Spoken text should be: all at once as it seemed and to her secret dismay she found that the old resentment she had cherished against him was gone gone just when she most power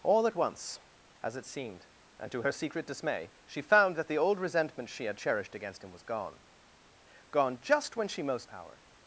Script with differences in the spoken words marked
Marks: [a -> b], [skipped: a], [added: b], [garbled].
all at once as it seemed and to her secret dismay she found that the old resentment she had cherished against him was gone gone just when she most power